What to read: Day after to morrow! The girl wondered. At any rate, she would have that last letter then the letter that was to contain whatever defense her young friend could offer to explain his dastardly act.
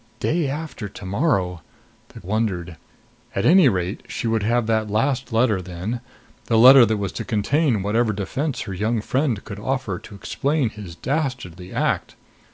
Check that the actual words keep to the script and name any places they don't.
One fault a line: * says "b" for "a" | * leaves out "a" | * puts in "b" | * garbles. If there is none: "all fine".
* leaves out "girl"